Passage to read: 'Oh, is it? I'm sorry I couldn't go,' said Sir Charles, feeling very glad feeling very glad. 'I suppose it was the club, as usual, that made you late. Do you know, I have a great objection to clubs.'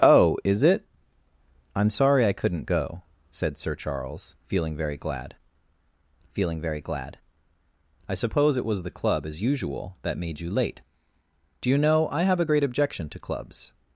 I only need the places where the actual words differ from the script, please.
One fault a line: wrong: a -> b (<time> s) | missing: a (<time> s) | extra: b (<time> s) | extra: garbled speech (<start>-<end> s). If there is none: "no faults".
no faults